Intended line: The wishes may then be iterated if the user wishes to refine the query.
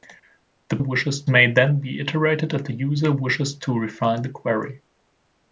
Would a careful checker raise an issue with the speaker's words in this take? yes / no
no